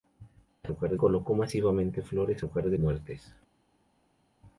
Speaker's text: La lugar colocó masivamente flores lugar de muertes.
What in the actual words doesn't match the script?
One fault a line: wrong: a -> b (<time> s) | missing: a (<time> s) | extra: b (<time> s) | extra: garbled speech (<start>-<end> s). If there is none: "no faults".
no faults